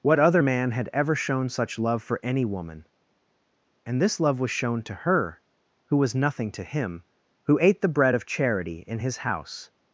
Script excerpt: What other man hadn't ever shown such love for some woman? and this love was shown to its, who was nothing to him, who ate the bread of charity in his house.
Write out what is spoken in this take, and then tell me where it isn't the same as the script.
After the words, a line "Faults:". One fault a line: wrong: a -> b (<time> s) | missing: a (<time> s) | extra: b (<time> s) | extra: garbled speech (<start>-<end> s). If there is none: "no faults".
What other man had ever shown such love for any woman? and this love was shown to her, who was nothing to him, who ate the bread of charity in his house.
Faults:
wrong: hadn't -> had (0.7 s)
wrong: some -> any (2.2 s)
wrong: its -> her (4.9 s)